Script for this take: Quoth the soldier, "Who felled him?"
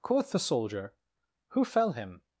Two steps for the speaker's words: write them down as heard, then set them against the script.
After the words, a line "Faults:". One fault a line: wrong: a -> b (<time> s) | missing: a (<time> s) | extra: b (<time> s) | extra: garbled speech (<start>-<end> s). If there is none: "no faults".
Quoth the soldier, "Who fell him?"
Faults:
wrong: felled -> fell (1.6 s)